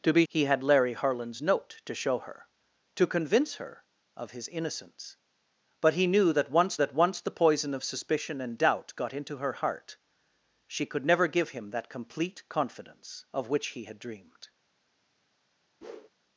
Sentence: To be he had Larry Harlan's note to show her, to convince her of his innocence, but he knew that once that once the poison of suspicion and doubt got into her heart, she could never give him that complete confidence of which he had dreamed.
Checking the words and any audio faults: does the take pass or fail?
fail